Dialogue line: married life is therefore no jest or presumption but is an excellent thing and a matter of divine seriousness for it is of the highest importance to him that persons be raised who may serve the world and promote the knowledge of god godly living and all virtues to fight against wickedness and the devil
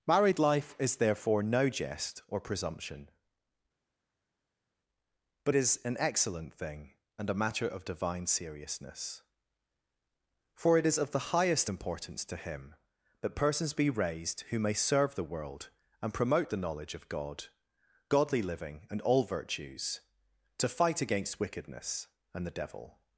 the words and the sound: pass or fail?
pass